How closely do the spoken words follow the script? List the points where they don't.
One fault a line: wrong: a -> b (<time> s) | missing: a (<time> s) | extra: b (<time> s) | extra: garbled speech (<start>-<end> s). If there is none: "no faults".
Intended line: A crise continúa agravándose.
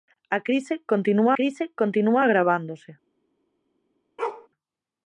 extra: crise continúa (1.4 s)